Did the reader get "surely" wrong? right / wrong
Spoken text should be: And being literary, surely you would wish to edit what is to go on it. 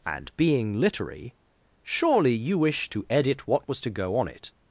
right